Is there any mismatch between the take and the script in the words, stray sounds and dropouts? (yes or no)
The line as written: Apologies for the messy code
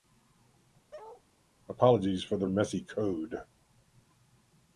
yes